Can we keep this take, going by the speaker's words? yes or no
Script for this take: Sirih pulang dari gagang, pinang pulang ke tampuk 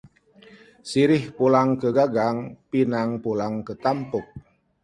no